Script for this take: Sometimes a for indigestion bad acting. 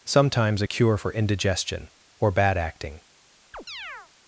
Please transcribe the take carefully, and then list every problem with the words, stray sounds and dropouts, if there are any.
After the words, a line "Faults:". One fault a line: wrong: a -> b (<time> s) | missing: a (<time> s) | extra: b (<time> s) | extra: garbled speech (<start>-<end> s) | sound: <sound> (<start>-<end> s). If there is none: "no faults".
Sometimes a cure for indigestion or bad acting.
Faults:
extra: cure (0.7 s)
extra: or (2.2 s)
sound: chirp (3.5-4.1 s)